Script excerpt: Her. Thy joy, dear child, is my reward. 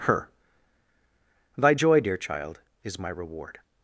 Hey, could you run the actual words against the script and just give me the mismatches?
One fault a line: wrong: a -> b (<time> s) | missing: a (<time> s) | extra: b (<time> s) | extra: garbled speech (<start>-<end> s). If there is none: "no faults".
no faults